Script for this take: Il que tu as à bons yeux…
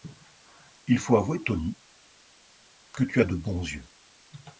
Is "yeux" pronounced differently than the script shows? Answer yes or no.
no